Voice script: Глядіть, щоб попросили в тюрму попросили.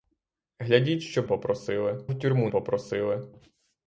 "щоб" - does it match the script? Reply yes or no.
yes